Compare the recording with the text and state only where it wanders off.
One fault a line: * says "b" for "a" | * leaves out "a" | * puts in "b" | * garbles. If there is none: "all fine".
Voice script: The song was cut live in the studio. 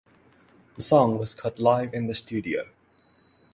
all fine